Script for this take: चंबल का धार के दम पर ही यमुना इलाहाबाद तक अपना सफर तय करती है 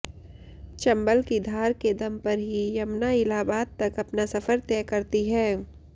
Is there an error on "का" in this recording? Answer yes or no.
yes